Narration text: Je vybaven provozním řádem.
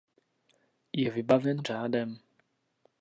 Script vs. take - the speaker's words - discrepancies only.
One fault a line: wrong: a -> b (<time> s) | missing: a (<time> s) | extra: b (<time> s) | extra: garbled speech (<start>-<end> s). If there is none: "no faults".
missing: provozním (1.6 s)